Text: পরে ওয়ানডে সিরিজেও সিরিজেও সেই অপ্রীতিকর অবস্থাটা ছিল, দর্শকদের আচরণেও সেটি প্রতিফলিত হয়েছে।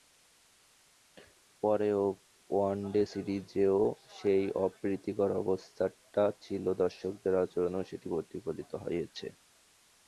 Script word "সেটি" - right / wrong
right